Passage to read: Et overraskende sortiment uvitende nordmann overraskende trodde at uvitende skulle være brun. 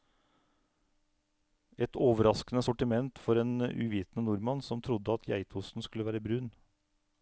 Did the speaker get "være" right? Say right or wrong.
right